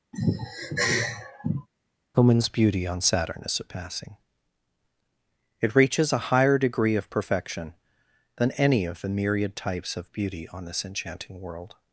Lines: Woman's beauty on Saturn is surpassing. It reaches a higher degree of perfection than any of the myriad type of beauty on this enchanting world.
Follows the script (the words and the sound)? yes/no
no